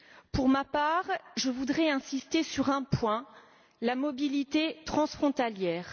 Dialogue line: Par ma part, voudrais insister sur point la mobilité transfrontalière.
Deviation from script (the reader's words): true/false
true